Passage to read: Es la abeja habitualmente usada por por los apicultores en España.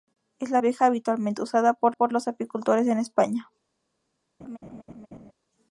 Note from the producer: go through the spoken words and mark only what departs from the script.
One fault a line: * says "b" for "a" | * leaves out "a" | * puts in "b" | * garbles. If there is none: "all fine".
all fine